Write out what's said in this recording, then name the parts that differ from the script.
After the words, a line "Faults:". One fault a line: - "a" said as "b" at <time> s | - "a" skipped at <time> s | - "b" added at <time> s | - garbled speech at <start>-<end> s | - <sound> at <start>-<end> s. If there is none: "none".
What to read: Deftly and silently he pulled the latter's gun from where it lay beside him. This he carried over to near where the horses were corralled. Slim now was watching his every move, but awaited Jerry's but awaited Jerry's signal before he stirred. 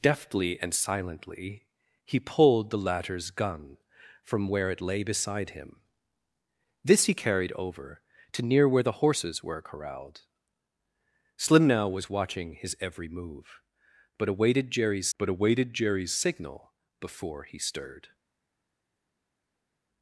Deftly and silently he pulled the latter's gun from where it lay beside him. This he carried over to near where the horses were corralled. Slim now was watching his every move, but awaited Jerry's but awaited Jerry's signal before he stirred.
Faults:
none